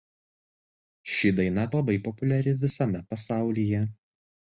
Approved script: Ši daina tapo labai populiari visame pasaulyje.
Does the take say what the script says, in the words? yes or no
no